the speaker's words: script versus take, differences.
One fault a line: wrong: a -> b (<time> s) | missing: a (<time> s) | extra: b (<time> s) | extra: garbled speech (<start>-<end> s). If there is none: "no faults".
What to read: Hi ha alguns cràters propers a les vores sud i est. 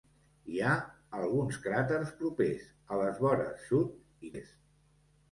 no faults